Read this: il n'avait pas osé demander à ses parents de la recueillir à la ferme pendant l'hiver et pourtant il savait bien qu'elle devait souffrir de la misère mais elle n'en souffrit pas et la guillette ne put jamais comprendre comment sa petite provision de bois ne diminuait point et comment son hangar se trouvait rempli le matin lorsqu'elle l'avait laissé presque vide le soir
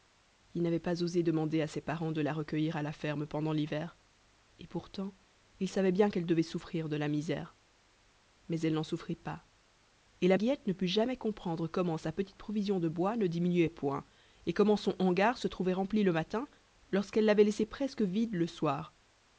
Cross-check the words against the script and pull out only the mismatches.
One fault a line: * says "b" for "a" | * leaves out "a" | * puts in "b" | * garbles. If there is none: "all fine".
all fine